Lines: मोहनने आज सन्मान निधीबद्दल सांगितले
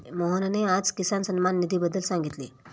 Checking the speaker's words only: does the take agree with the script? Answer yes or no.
no